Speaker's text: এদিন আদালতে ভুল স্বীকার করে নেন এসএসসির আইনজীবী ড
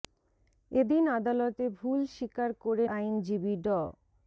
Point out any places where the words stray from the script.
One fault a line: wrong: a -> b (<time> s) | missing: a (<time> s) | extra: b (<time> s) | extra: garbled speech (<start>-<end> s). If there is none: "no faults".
missing: নেন এসএসসির (2.9 s)